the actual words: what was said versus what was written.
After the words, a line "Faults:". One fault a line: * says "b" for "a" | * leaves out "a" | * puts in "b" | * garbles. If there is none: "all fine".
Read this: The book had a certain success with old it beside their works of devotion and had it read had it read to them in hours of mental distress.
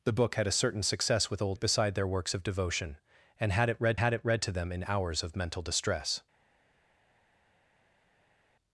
The book had a certain success with old it beside their works of devotion and had it read had it read to them in hours of mental distress.
Faults:
all fine